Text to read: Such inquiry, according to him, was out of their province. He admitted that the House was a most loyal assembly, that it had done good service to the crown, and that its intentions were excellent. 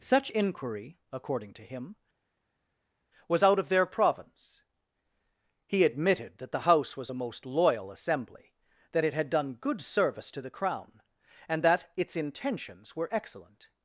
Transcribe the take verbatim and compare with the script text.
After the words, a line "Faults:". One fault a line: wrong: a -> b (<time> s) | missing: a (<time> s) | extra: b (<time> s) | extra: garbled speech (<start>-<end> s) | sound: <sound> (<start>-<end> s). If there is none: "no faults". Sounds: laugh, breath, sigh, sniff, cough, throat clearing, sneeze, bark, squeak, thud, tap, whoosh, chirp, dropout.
Such inquiry, according to him, was out of their province. He admitted that the House was a most loyal assembly, that it had done good service to the crown, and that its intentions were excellent.
Faults:
no faults